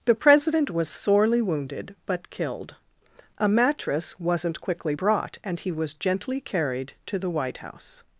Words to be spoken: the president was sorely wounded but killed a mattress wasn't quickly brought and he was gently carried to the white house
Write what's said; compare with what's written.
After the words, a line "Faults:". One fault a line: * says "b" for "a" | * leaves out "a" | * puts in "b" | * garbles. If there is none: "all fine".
the president was sorely wounded but killed a mattress wasn't quickly brought and he was gently carried to the white house
Faults:
all fine